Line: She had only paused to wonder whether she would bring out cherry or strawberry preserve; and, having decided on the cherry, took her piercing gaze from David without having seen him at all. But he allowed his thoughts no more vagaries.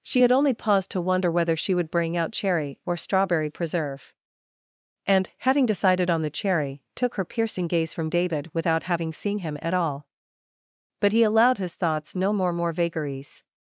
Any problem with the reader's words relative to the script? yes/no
yes